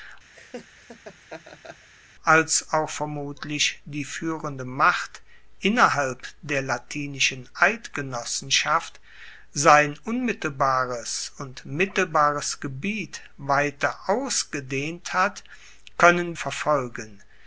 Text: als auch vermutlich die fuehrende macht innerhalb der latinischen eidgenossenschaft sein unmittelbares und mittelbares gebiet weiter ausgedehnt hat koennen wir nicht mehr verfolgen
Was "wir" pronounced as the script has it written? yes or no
no